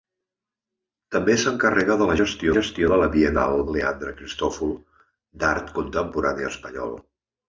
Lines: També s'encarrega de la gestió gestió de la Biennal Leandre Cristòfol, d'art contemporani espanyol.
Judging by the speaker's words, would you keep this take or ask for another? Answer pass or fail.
pass